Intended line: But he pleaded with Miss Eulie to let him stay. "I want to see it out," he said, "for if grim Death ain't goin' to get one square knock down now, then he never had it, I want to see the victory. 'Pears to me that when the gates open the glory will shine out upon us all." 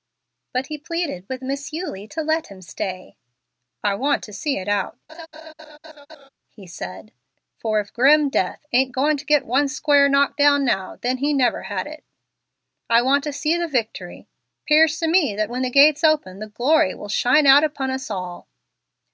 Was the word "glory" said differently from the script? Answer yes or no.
no